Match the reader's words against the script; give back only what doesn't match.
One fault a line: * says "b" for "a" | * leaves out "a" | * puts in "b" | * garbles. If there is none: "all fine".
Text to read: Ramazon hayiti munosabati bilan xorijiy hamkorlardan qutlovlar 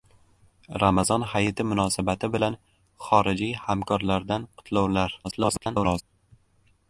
* garbles